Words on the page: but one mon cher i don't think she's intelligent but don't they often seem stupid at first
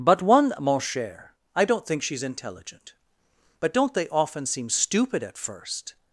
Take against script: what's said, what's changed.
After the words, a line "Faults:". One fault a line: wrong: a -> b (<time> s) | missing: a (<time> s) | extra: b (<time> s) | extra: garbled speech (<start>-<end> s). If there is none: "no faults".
but one mon cher i don't think she's intelligent but don't they often seem stupid at first
Faults:
no faults